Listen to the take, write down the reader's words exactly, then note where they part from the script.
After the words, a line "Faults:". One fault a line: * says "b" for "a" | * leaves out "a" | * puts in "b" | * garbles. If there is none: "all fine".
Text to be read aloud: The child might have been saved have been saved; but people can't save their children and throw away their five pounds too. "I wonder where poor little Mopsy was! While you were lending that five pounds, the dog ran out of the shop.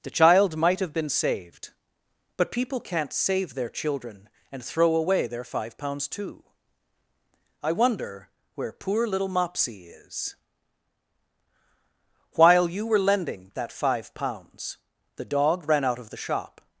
The child might have been saved; but people can't save their children and throw away their five pounds too. "I wonder where poor little Mopsy is! While you were lending that five pounds, the dog ran out of the shop.
Faults:
* leaves out "have been saved"
* says "is" for "was"